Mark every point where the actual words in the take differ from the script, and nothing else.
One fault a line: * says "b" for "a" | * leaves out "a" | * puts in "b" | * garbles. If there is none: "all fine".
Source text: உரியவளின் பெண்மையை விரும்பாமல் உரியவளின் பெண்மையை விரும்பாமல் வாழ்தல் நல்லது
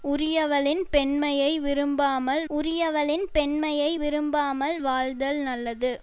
all fine